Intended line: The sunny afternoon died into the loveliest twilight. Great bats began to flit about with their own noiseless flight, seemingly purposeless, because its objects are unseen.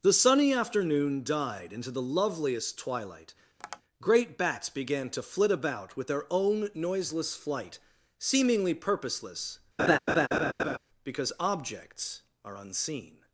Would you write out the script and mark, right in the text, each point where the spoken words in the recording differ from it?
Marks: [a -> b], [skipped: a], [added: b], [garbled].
The sunny afternoon died into the loveliest twilight. Great bats began to flit about with their own noiseless flight, seemingly purposeless, because [skipped: its] objects are unseen.